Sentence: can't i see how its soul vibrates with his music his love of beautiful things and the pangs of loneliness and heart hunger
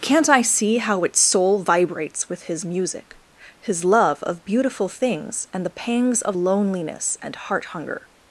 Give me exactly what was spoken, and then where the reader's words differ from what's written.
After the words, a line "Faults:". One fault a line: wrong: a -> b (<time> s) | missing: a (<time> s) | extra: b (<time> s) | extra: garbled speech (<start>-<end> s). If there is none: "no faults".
can't i see how its soul vibrates with his music his love of beautiful things and the pangs of loneliness and heart hunger
Faults:
no faults